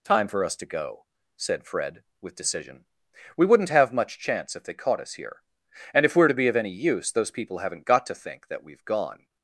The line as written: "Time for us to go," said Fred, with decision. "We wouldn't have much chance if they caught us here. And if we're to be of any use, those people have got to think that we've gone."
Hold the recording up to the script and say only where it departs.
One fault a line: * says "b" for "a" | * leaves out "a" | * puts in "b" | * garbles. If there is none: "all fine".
* says "haven't" for "have"